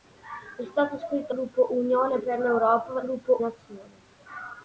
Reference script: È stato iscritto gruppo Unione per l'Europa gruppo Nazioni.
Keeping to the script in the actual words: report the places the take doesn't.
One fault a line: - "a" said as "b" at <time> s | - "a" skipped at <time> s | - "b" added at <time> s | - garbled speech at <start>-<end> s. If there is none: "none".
none